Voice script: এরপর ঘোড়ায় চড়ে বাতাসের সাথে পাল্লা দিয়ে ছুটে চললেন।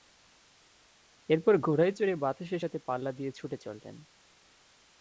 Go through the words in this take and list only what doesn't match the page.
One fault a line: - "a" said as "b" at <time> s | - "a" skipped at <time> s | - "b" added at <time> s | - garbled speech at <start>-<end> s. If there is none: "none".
none